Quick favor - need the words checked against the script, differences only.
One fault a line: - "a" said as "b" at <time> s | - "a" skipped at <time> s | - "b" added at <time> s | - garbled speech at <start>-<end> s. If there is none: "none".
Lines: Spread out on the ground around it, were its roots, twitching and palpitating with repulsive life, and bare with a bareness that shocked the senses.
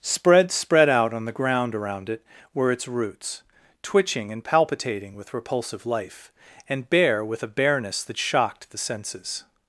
- "spread" added at 0.5 s